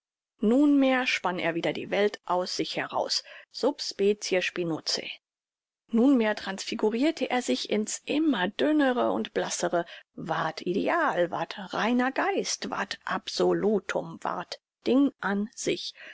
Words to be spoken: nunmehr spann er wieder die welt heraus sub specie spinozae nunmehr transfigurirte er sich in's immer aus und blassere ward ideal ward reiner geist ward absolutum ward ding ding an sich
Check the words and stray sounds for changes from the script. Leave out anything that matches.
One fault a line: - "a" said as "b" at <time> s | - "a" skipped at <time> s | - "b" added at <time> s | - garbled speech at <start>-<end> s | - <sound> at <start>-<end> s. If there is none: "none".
- "aus sich" added at 2.2 s
- "aus" said as "dünnere" at 8.5 s
- "ding" skipped at 15.1 s